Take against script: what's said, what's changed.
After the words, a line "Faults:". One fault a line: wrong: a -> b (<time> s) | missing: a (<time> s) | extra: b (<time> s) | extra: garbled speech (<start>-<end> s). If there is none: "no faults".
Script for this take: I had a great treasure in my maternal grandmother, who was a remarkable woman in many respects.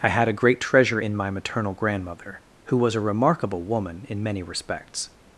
I had a great treasure in my maternal grandmother, who was a remarkable woman in many respects.
Faults:
no faults